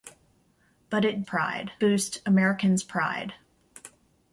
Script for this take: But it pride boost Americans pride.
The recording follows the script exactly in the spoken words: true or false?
true